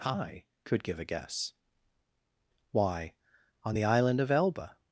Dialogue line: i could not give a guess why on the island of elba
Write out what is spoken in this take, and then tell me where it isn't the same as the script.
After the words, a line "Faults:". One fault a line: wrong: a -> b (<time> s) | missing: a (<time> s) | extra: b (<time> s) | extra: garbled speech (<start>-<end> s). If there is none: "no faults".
i could give a guess why on the island of elba
Faults:
missing: not (0.8 s)